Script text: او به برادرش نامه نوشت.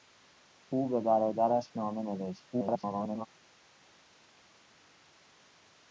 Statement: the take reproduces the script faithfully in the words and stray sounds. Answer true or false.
false